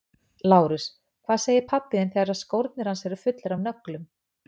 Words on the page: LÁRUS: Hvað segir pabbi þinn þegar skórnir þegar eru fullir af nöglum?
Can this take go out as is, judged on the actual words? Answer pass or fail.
fail